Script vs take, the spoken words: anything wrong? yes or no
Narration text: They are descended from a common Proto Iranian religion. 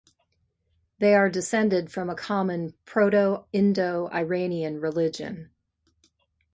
yes